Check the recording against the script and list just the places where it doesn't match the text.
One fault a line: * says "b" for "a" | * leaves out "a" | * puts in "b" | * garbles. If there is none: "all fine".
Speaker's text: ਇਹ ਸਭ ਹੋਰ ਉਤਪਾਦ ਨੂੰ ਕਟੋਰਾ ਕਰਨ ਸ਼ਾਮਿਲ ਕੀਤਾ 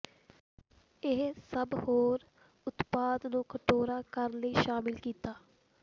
* puts in "ਲਈ"